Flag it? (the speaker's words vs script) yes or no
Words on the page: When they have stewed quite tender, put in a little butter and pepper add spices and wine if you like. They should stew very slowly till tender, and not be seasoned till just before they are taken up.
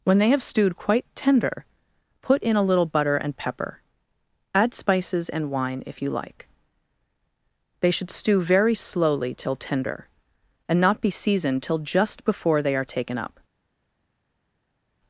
no